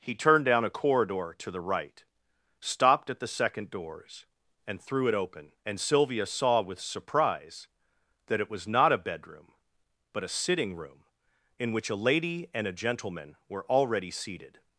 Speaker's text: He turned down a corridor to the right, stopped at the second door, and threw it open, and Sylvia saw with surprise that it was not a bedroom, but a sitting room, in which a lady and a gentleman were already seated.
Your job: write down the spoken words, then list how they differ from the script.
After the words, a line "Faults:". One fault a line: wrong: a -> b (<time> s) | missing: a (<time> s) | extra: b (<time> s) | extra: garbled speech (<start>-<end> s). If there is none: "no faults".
He turned down a corridor to the right, stopped at the second doors, and threw it open, and Sylvia saw with surprise that it was not a bedroom, but a sitting room, in which a lady and a gentleman were already seated.
Faults:
wrong: door -> doors (3.7 s)